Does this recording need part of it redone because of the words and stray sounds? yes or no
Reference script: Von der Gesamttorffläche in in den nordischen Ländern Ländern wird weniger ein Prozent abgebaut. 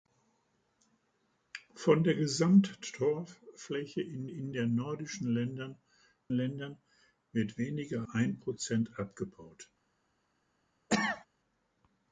yes